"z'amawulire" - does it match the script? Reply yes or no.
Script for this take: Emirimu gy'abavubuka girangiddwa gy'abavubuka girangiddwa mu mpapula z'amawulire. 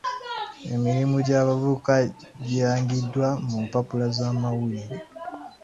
yes